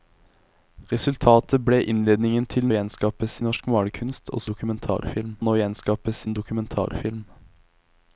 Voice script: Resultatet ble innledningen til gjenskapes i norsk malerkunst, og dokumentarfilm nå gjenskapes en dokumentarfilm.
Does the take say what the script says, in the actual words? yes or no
yes